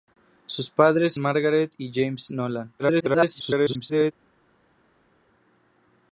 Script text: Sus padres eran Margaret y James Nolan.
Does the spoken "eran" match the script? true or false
false